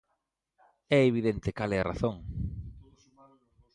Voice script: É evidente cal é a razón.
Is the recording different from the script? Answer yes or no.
no